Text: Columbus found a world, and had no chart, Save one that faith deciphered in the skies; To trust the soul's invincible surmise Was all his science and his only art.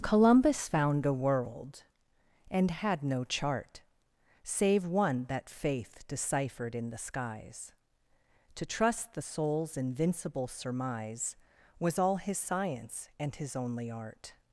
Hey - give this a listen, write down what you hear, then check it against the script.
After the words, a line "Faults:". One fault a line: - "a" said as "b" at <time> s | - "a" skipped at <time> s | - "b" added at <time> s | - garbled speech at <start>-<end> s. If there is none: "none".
Columbus found a world, and had no chart, Save one that faith deciphered in the skies; To trust the soul's invincible surmise Was all his science and his only art.
Faults:
none